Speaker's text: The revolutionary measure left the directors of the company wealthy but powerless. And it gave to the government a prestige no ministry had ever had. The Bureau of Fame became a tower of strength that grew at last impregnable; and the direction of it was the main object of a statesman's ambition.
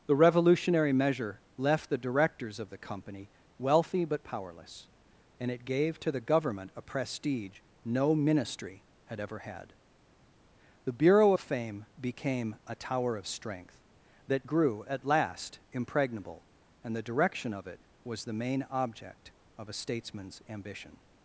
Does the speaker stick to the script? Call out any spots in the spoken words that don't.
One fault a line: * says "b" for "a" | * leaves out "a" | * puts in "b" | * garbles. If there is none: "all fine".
all fine